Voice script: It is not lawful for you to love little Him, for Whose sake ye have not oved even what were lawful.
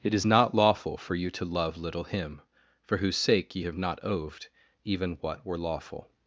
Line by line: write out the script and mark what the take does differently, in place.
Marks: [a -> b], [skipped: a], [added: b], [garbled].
It is not lawful for you to love little Him, for Whose sake ye have not oved even what were lawful.